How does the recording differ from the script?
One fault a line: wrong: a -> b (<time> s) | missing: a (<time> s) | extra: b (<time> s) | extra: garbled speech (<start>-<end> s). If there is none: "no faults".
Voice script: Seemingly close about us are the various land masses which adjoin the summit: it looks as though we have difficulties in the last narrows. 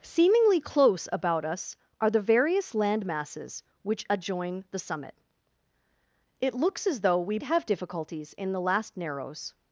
no faults